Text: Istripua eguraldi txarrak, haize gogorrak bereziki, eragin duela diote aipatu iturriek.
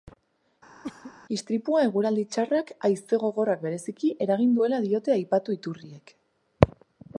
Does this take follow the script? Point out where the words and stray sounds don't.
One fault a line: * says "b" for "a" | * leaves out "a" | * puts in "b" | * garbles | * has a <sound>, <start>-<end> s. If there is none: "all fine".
* has a cough, 0.8-1.1 s